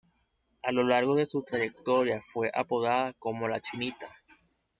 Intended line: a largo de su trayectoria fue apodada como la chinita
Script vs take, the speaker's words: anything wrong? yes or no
yes